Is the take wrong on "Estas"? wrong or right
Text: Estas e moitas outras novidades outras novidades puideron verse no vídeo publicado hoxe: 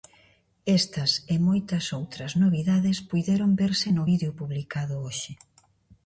right